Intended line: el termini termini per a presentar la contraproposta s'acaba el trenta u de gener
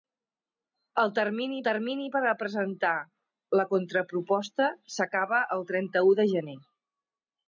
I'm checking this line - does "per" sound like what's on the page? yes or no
yes